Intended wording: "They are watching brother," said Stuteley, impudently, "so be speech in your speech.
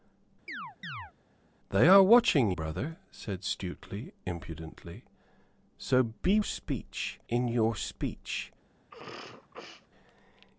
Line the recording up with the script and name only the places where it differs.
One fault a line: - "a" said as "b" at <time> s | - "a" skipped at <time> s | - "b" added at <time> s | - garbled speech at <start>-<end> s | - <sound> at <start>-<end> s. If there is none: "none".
- chirp at 0.5-1.1 s
- sneeze at 8.9-9.9 s